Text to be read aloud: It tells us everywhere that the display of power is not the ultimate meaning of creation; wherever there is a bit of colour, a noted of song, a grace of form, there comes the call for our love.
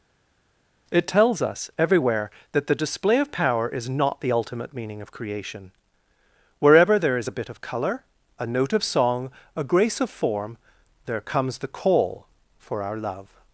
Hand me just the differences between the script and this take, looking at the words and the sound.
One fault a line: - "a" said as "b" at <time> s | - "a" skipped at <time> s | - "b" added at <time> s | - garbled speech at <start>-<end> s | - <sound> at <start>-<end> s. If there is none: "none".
- "noted" said as "note" at 8.4 s